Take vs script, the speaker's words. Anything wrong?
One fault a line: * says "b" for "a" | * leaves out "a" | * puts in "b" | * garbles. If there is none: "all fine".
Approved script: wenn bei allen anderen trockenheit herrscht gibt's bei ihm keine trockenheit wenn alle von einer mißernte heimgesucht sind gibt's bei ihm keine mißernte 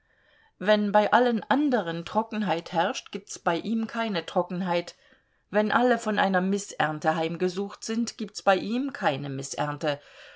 all fine